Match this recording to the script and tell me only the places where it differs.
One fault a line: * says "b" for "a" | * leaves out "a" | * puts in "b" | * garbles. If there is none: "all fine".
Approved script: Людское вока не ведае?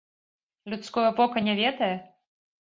all fine